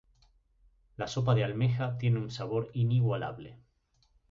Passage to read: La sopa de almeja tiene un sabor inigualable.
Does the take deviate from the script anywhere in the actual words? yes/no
no